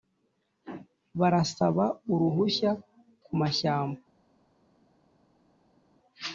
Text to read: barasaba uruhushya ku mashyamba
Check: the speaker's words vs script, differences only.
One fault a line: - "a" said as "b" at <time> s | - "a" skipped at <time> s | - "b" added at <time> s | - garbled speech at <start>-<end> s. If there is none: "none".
none